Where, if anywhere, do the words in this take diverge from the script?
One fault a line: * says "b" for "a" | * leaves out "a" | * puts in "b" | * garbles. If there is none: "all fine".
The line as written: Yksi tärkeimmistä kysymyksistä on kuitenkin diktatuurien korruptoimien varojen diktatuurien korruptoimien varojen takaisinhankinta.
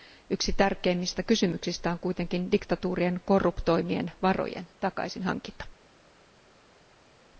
* leaves out "diktatuurien korruptoimien varojen"